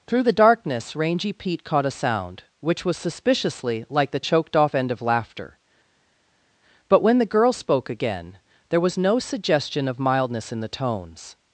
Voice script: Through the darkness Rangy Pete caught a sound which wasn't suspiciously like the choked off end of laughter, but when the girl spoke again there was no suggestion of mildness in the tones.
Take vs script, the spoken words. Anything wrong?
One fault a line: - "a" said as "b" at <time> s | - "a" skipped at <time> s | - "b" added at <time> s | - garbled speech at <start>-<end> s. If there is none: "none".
- "wasn't" said as "was" at 2.8 s